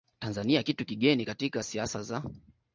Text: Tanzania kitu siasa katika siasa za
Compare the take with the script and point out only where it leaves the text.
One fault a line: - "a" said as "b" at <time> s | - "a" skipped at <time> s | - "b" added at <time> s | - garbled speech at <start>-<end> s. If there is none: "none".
- "siasa" said as "kigeni" at 0.9 s